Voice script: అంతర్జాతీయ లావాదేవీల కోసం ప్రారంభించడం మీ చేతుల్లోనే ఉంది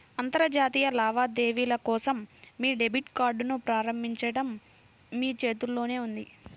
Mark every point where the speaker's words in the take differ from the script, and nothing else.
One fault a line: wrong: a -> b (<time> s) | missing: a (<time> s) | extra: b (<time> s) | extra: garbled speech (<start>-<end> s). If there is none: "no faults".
extra: మీ డెబిట్ కార్డ్ని (2.6 s)